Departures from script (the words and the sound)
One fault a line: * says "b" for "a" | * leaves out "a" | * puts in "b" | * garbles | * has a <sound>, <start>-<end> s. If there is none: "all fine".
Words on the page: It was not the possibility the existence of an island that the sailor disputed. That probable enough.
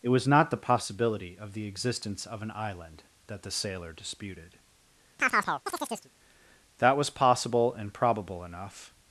* puts in "of"
* has a chirp, 5.2-6.1 s
* puts in "was possible and"